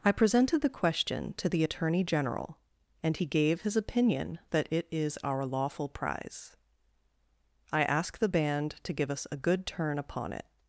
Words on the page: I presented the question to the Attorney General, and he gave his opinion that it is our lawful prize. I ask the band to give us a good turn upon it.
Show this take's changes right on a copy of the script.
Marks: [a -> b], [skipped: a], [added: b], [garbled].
I presented the question to the Attorney General, and he gave his opinion that it is our lawful prize. I ask the band to give us a good turn upon it.